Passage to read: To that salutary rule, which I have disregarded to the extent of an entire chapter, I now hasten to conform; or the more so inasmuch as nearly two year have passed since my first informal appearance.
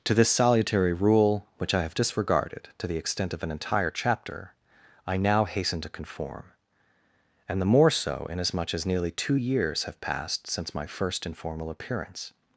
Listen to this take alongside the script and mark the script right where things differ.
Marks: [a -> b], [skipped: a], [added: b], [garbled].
To [that -> this] salutary rule, which I have disregarded to the extent of an entire chapter, I now hasten to conform; [or -> and] the more so inasmuch as nearly two [year -> years] have passed since my first informal appearance.